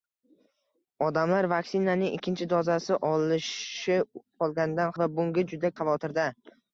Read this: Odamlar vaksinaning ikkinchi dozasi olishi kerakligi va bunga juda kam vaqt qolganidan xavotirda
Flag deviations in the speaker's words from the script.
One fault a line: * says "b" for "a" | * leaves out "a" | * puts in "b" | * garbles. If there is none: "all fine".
* says "qolganidan" for "kerakligi"
* leaves out "kam vaqt qolganidan"